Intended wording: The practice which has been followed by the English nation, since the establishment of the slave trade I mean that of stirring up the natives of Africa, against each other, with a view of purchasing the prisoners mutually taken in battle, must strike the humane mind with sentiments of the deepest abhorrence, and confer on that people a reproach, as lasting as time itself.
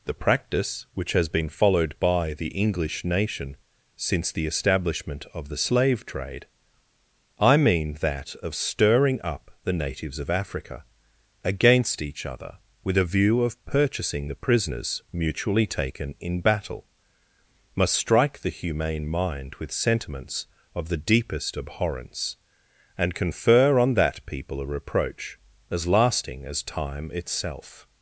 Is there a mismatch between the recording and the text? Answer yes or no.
no